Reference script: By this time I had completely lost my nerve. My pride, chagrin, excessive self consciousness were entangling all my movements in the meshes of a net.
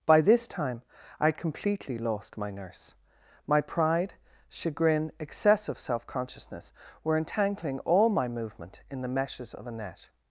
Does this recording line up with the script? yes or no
no